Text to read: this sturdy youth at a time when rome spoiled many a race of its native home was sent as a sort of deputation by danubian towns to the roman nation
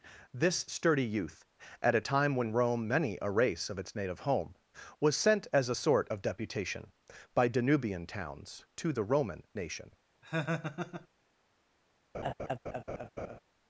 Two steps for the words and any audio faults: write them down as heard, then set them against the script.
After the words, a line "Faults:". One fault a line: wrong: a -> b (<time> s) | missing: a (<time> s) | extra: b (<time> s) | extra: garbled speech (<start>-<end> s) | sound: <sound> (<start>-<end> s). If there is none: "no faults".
this sturdy youth at a time when rome many a race of its native home was sent as a sort of deputation by danubian towns to the roman nation
Faults:
missing: spoiled (2.9 s)
sound: laugh (10.2-11.1 s)
sound: laugh (12.1-13.4 s)